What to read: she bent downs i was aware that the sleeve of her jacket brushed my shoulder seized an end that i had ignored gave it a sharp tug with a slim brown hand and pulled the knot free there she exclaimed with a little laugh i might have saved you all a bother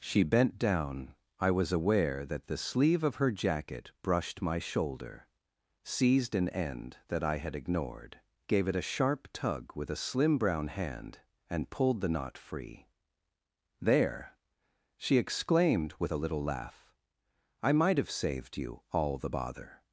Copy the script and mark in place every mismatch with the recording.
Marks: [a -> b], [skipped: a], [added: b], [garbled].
she bent [downs -> down] i was aware that the sleeve of her jacket brushed my shoulder seized an end that i had ignored gave it a sharp tug with a slim brown hand and pulled the knot free there she exclaimed with a little laugh i might have saved you all [a -> the] bother